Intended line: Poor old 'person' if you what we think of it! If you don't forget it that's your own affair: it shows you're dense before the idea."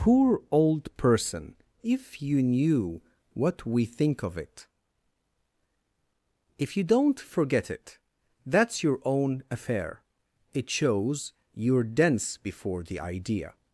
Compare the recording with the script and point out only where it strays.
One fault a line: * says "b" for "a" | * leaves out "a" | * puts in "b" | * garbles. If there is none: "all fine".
* puts in "knew"